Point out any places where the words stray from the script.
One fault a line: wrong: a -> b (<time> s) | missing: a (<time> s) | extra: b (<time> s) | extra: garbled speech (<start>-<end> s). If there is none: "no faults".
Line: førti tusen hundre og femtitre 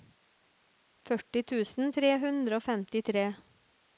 extra: tre (2.0 s)